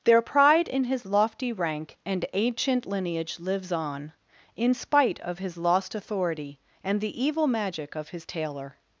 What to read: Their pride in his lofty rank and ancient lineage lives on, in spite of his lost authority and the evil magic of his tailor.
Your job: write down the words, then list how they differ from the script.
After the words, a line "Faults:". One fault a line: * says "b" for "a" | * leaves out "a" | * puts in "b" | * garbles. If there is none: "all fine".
Their pride in his lofty rank and ancient lineage lives on, in spite of his lost authority and the evil magic of his tailor.
Faults:
all fine